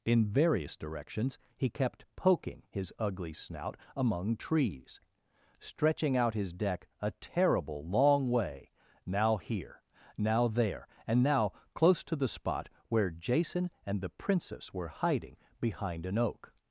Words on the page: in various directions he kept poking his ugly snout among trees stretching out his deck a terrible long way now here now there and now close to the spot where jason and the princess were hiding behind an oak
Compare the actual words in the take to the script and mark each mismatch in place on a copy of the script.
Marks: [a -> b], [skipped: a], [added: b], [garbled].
in various directions he kept poking his ugly snout among trees stretching out his deck a terrible long way now here now there and now close to the spot where jason and the princess were hiding behind an oak